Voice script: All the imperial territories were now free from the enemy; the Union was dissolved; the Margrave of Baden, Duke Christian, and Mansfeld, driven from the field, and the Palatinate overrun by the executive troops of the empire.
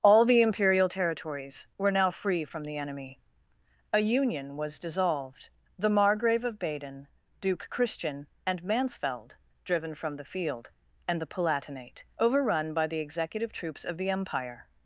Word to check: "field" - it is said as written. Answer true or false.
true